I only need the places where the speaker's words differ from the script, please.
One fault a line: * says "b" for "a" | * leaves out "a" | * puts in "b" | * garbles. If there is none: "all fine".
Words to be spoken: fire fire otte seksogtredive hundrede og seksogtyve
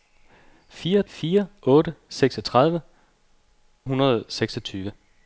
all fine